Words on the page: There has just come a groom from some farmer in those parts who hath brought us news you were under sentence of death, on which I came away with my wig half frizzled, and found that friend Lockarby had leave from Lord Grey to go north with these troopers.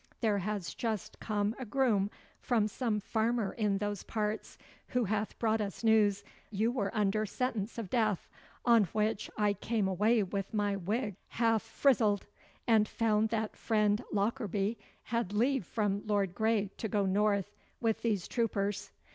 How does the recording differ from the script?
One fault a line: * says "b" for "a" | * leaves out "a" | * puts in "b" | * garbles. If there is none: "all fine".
all fine